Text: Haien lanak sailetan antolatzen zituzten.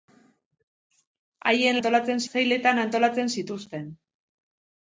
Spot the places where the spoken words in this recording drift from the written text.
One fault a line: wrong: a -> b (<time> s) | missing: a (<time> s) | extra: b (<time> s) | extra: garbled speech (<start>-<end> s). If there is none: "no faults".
wrong: lanak -> antolatzen (1.8 s)